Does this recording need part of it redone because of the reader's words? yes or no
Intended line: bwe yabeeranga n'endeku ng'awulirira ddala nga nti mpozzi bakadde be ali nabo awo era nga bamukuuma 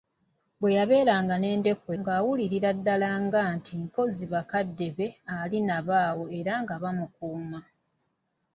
no